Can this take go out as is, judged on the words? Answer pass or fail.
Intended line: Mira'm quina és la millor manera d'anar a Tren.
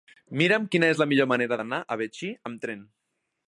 fail